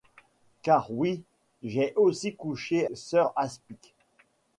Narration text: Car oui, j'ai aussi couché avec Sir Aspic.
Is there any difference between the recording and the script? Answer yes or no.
yes